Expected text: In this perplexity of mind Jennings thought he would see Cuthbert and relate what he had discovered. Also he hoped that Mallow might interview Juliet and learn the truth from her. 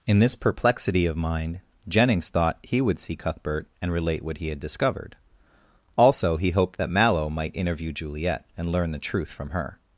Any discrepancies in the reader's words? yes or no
no